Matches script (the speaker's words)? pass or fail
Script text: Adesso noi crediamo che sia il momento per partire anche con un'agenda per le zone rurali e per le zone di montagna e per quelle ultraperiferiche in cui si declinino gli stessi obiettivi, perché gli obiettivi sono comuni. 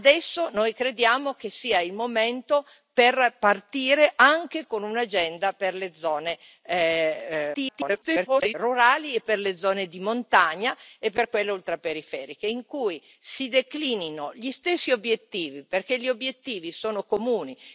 fail